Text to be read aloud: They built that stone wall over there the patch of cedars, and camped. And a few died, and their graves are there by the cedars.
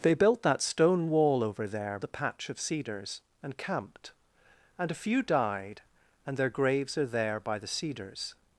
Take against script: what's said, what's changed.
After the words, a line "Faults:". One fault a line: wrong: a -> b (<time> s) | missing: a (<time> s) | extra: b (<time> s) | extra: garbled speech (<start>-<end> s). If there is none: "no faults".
They built that stone wall over there the patch of cedars, and camped. And a few died, and their graves are there by the cedars.
Faults:
no faults